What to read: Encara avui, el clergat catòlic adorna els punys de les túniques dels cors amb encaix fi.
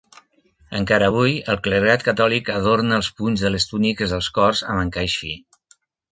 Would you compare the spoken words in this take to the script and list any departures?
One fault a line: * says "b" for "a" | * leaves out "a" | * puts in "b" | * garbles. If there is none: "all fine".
all fine